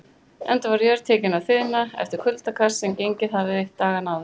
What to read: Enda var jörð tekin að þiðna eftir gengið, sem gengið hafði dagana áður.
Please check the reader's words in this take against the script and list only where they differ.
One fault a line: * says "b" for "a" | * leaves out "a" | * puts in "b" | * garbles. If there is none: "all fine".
* says "kuldakast" for "gengið"